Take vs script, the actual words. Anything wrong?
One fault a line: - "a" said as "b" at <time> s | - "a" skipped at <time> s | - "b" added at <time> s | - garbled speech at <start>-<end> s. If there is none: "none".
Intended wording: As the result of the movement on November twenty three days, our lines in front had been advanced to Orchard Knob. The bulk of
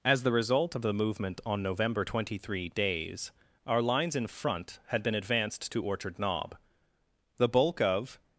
none